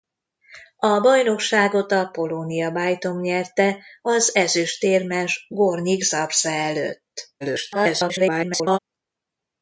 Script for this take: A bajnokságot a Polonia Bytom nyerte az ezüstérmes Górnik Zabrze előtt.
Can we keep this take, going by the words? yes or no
no